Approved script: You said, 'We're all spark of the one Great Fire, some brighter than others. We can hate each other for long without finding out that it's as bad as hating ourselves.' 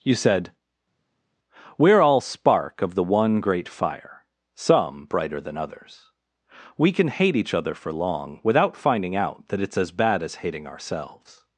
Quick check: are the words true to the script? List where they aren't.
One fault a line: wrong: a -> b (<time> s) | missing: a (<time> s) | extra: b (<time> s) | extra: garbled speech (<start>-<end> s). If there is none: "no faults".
no faults